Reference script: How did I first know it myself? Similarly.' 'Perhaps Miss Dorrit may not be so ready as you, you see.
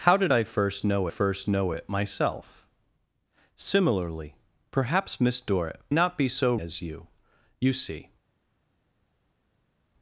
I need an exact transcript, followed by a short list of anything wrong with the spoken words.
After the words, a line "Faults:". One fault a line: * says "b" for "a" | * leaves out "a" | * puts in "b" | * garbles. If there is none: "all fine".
How did I first know first know it myself? Similarly.' 'Perhaps Miss Dorrit not be so as you, you see.
Faults:
* puts in "first know"
* leaves out "may"
* leaves out "ready"